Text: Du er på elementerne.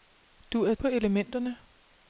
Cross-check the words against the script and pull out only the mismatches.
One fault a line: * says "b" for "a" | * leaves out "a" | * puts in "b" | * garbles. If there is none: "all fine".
all fine